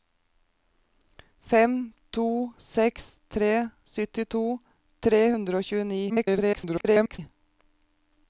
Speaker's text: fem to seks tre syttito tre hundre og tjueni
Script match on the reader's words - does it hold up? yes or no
no